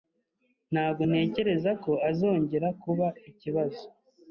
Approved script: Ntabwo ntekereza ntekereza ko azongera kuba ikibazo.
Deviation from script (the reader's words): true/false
true